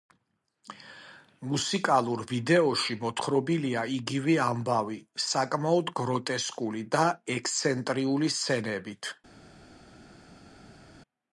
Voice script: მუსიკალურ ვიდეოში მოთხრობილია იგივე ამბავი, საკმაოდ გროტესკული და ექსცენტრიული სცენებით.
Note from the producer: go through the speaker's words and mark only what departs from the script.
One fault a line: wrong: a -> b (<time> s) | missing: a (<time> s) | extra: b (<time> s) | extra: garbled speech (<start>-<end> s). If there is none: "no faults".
no faults